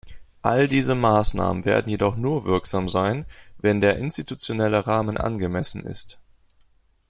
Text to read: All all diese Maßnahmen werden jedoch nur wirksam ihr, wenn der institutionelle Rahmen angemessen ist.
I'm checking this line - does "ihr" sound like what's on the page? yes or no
no